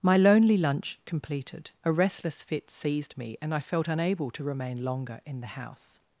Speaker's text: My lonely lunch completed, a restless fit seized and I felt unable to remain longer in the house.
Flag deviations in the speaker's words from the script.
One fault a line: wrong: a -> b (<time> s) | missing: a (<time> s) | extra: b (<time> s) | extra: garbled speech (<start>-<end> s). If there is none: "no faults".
extra: me (3.2 s)